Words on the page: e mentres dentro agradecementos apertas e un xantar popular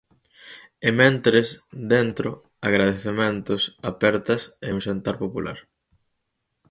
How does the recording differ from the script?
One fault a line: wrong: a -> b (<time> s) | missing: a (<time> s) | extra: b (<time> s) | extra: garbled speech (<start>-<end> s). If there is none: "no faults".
no faults